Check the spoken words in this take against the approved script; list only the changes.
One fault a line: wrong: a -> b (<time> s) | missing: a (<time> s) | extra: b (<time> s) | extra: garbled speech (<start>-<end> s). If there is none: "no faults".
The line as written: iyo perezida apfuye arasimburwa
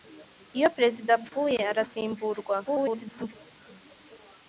extra: garbled speech (2.6-3.3 s)